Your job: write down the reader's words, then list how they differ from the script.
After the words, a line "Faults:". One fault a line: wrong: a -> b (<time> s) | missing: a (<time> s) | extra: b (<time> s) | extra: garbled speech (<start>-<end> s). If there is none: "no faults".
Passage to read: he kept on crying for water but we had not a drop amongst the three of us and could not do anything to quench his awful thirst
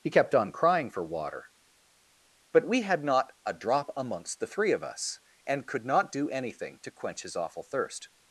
he kept on crying for water but we had not a drop amongst the three of us and could not do anything to quench his awful thirst
Faults:
no faults